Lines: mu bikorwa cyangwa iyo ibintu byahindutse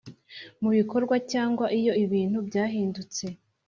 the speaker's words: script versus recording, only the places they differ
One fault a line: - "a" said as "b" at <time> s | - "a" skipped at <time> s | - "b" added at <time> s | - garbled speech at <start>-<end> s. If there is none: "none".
none